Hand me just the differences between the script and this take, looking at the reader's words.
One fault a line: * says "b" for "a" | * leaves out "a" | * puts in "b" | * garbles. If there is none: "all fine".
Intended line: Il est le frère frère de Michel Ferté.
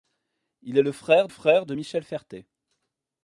all fine